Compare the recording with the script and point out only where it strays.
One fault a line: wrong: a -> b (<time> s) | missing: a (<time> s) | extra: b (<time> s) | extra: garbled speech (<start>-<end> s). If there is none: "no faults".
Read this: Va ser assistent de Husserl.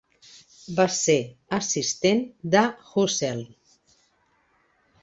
no faults